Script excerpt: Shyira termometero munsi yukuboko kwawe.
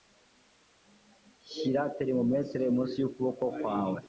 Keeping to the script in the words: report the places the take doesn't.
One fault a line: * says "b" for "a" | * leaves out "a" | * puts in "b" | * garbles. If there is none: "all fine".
all fine